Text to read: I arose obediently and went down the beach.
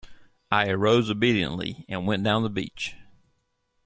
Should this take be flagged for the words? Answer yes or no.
no